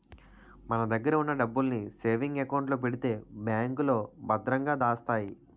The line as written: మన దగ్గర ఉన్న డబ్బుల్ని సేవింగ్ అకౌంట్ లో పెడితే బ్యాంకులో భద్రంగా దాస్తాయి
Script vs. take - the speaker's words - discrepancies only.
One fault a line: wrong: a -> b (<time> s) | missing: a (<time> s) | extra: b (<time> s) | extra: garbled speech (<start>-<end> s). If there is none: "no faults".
no faults